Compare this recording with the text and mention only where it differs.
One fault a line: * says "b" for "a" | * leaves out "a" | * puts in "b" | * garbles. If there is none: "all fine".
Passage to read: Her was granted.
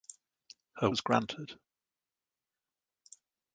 all fine